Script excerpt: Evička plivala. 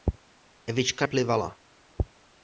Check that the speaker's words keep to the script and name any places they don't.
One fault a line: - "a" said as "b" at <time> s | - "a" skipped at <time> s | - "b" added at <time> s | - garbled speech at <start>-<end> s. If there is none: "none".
none